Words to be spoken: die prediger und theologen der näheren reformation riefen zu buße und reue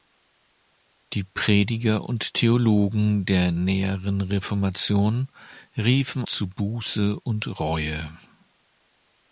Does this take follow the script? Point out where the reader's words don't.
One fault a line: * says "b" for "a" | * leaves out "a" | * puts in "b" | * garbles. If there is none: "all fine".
all fine